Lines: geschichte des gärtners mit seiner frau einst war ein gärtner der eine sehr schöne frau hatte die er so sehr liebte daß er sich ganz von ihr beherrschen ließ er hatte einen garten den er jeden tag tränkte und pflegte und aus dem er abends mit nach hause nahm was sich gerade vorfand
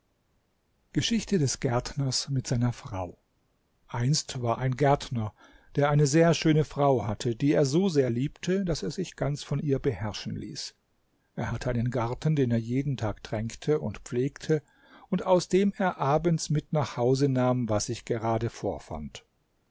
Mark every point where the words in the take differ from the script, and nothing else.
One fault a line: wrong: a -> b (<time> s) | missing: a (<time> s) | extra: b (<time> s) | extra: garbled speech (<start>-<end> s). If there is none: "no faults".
no faults